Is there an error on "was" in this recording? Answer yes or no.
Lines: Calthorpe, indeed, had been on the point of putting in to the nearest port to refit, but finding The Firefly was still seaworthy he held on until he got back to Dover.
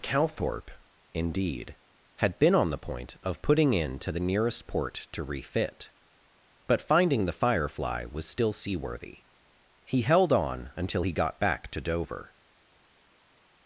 no